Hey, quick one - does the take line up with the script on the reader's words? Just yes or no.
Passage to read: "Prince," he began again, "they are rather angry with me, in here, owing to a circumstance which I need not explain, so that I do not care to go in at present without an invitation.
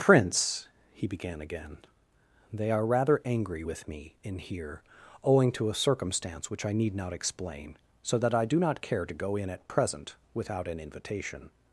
yes